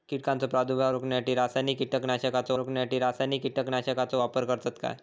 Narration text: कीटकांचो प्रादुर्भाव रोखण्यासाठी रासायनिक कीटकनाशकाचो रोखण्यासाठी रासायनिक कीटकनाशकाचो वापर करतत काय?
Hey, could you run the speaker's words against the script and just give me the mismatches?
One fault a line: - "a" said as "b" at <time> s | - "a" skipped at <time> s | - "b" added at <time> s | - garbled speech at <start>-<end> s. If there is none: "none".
none